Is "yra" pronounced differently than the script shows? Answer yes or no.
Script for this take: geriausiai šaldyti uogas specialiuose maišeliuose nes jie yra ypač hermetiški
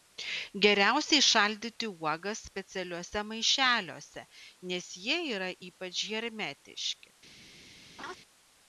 no